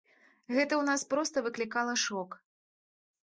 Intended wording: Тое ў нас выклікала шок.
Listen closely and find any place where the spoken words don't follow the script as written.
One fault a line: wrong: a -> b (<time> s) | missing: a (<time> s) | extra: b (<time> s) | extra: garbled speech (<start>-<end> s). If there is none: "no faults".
wrong: Тое -> Гэта (0.6 s)
extra: проста (1.1 s)